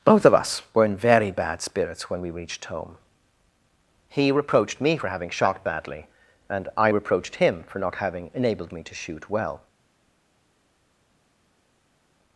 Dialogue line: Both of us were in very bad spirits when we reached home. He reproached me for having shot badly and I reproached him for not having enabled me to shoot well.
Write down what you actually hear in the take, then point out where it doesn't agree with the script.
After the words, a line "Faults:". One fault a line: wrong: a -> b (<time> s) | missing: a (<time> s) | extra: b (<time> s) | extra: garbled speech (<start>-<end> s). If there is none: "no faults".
Both of us were in very bad spirits when we reached home. He reproached me for having shot badly and I reproached him for not having enabled me to shoot well.
Faults:
no faults